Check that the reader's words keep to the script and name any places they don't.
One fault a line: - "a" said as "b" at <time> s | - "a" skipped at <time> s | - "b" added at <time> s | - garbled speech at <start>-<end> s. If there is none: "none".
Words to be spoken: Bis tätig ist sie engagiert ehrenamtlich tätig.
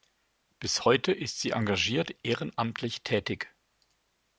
- "tätig" said as "heute" at 0.8 s